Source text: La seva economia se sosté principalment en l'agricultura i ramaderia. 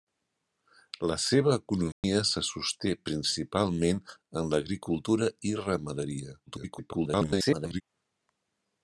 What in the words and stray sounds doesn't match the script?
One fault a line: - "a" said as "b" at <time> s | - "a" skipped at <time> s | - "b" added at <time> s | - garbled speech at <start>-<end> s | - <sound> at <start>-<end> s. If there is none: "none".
- dropout at 1.9-2.0 s
- garbled speech at 6.5-7.8 s